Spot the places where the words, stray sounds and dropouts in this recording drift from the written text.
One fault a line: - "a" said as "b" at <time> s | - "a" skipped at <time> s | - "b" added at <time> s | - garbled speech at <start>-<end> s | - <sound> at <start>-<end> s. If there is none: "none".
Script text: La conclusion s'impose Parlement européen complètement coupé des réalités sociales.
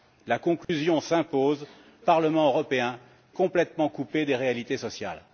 - dropout at 0.6-0.7 s